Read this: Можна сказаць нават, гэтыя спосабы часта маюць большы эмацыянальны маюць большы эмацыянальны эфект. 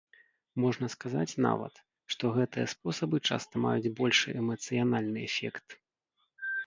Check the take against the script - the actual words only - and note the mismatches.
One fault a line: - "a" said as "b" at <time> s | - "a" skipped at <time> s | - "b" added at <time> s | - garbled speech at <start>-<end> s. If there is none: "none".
- "што" added at 2.1 s
- "маюць большы эмацыянальны" skipped at 5.2 s